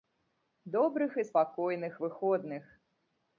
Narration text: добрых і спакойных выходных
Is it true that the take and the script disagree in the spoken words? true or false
false